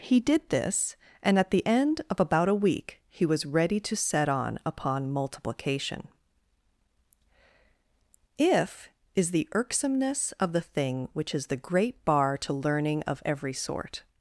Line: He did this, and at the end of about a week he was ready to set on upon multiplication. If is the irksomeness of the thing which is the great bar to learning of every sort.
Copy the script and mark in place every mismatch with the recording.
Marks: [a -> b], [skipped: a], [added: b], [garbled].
He did this, and at the end of about a week he was ready to set on upon multiplication. If is the irksomeness of the thing which is the great bar to learning of every sort.